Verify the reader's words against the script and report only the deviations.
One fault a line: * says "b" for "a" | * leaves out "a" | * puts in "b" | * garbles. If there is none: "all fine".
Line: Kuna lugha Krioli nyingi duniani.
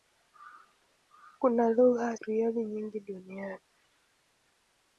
all fine